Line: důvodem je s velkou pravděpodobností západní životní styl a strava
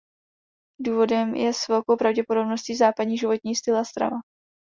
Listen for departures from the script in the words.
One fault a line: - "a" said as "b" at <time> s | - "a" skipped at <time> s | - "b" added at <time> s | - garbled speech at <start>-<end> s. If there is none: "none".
none